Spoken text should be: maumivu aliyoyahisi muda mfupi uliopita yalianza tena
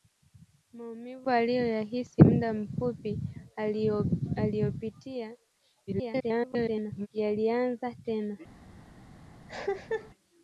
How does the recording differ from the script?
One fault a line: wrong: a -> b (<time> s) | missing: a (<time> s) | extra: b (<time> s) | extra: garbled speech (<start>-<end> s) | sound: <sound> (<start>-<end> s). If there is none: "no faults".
extra: garbled speech (5.9-7.1 s)
sound: cough (9.5-10.1 s)